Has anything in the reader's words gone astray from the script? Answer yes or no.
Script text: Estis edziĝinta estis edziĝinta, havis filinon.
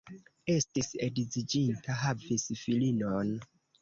yes